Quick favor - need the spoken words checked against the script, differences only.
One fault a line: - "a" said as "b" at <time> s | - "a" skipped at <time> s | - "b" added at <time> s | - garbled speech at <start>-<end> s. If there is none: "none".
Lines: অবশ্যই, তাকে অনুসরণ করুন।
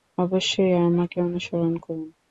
- "তাকে" said as "আমাকে" at 0.8 s